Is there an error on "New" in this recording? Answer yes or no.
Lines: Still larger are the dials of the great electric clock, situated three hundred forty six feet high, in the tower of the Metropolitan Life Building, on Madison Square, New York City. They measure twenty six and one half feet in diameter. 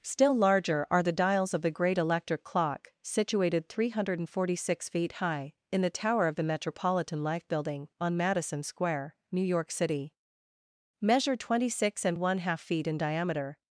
no